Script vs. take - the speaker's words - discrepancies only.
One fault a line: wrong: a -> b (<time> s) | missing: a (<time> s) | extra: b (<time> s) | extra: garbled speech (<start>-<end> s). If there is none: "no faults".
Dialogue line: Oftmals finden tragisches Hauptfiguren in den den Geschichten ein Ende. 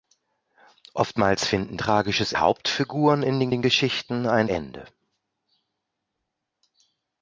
no faults